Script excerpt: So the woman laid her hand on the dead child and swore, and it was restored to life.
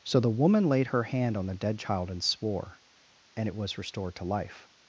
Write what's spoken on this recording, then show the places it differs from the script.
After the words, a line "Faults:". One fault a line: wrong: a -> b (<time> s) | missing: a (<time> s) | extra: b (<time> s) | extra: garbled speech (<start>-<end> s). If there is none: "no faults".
So the woman laid her hand on the dead child and swore, and it was restored to life.
Faults:
no faults